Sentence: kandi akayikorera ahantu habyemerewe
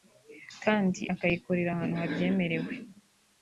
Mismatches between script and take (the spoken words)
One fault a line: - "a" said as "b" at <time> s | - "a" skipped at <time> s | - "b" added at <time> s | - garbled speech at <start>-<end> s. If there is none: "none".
none